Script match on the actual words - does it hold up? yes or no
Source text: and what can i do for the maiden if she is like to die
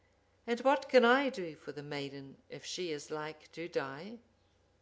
yes